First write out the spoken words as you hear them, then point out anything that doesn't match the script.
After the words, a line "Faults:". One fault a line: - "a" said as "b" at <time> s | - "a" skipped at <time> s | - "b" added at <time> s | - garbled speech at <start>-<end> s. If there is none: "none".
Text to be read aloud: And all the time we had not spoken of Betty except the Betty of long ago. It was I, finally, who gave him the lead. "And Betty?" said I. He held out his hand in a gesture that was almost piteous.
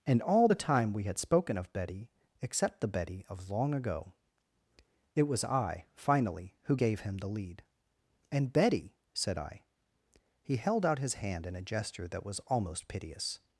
And all the time we had spoken of Betty except the Betty of long ago. It was I, finally, who gave him the lead. "And Betty?" said I. He held out his hand in a gesture that was almost piteous.
Faults:
- "not" skipped at 1.2 s